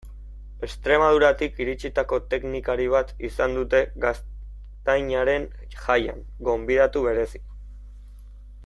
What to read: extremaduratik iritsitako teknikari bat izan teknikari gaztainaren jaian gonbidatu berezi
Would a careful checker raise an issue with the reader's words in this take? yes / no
yes